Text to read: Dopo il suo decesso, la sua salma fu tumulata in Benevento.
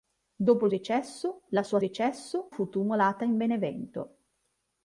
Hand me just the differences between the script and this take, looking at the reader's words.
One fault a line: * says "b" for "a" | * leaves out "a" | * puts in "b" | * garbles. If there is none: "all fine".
* leaves out "suo"
* says "decesso" for "salma"